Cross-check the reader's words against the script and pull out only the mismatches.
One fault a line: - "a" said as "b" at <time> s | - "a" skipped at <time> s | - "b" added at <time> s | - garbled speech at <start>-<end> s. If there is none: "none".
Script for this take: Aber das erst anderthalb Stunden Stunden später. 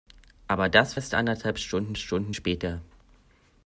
none